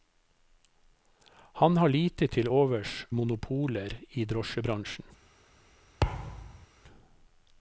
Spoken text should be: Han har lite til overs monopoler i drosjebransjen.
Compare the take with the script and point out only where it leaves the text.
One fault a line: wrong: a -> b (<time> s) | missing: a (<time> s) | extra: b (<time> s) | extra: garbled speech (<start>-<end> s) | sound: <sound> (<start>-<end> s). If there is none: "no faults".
sound: thud (6.0-6.7 s)